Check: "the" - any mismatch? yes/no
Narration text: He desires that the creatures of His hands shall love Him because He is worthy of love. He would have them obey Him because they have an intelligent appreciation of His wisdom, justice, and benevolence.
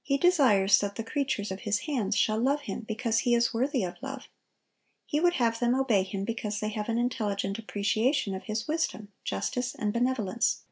no